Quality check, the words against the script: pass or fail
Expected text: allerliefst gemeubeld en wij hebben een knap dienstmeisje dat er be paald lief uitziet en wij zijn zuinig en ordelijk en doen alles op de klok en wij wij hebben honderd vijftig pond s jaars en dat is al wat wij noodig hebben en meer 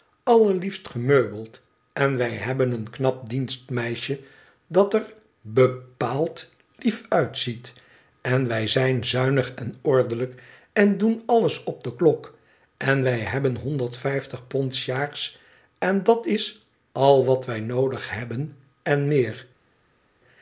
fail